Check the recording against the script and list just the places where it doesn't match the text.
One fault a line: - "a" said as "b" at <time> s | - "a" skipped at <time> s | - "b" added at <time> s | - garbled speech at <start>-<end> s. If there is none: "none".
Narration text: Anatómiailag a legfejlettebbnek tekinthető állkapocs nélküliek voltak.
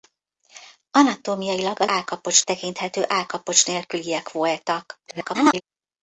- "legfejlettebbnek" said as "állkapocs" at 1.8 s
- garbled speech at 5.1-5.6 s